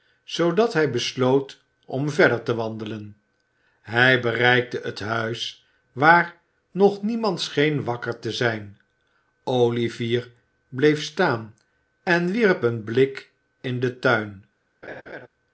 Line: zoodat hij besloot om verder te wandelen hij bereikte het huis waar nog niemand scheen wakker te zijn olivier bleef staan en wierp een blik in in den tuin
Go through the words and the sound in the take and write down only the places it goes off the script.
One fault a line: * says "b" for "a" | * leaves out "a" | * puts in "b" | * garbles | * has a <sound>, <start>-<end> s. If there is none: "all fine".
* leaves out "in"
* has a laugh, 14.8-15.3 s